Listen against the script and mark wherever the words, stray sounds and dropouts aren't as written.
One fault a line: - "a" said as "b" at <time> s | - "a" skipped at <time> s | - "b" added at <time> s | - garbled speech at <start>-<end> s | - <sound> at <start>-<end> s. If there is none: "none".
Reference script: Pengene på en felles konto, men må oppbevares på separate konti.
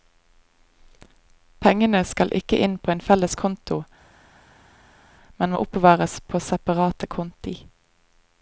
- "skal ikke inn" added at 2.1 s